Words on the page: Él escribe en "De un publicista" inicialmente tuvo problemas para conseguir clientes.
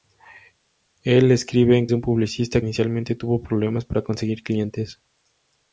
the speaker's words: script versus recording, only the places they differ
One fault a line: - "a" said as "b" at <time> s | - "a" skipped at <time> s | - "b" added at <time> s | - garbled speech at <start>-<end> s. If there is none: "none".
none